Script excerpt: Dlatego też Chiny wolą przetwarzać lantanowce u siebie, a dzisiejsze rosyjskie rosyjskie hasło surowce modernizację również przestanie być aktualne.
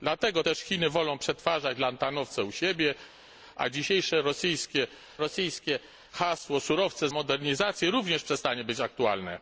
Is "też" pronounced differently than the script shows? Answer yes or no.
no